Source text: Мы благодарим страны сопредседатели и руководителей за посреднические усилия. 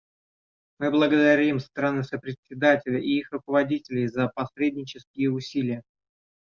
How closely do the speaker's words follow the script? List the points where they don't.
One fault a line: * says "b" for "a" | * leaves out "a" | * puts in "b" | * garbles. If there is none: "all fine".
* puts in "их"